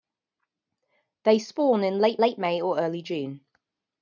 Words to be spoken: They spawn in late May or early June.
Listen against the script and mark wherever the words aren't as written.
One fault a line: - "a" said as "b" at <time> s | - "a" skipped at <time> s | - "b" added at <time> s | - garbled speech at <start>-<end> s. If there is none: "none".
- "late" added at 2.2 s